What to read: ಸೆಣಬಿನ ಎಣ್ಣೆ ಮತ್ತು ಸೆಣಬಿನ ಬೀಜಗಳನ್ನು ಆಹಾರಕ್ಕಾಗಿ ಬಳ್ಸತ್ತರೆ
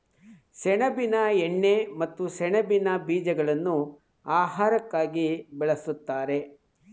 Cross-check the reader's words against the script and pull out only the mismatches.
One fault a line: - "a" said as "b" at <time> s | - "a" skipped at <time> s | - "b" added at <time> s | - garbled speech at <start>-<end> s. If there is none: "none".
none